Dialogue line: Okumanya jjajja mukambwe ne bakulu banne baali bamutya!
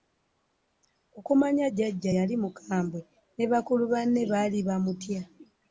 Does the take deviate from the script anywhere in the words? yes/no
yes